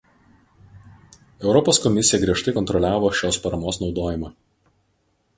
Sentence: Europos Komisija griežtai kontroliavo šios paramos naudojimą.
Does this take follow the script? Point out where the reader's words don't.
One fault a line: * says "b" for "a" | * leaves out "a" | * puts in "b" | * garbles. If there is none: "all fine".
all fine